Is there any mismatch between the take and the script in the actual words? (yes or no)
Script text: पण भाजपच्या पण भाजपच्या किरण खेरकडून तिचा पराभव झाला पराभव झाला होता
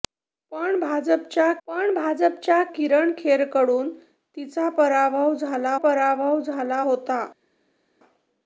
no